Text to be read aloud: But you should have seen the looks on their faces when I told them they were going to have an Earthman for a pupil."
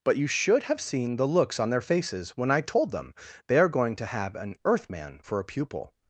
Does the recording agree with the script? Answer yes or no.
no